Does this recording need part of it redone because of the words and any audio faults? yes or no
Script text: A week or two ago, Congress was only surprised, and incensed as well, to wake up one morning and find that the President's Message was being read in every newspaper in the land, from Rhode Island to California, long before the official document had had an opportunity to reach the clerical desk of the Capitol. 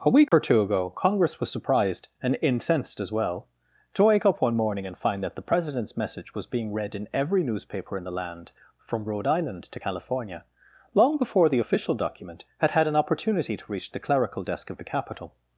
yes